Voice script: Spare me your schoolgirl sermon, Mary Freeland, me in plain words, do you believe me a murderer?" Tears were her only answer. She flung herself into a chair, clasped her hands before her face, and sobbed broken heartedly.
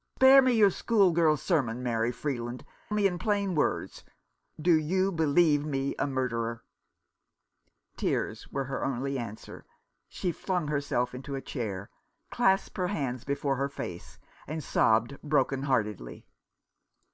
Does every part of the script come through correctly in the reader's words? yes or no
yes